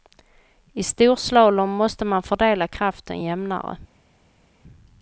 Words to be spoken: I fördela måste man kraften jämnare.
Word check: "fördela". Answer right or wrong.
wrong